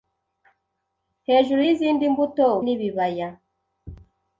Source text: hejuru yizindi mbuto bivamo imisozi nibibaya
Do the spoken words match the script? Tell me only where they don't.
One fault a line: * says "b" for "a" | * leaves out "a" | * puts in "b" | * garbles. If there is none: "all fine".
* leaves out "bivamo imisozi"